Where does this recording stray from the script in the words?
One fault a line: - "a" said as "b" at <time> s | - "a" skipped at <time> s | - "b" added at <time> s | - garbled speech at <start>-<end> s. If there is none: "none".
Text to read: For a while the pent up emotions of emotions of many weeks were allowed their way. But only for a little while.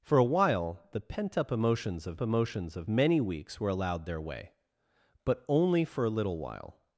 none